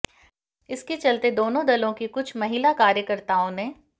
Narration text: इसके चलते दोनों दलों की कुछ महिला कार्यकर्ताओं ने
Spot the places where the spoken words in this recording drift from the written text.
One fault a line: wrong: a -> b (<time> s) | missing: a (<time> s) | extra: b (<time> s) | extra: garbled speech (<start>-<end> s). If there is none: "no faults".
no faults